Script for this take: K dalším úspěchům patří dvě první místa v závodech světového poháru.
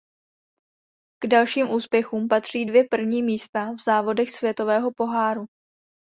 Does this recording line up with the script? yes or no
yes